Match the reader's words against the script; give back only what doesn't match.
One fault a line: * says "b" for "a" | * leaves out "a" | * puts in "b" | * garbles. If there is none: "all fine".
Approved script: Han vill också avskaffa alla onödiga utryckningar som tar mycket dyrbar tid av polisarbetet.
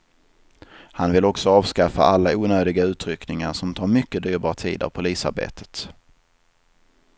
all fine